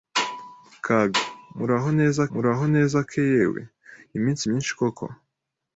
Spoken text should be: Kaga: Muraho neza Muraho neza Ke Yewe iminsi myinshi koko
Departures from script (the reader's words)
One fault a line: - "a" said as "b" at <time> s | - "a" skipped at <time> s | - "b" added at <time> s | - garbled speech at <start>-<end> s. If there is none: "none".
none